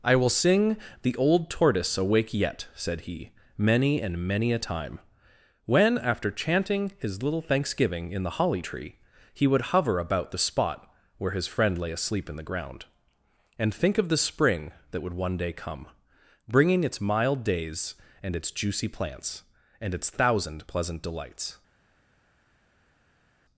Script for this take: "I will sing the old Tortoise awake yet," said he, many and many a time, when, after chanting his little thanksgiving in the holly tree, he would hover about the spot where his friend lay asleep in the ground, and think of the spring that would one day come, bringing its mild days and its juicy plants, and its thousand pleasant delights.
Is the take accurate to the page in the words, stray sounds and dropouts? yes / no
yes